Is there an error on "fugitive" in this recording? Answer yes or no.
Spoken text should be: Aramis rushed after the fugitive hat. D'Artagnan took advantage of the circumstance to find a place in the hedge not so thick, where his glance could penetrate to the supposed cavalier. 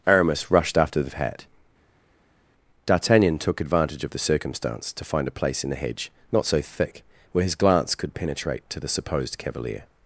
yes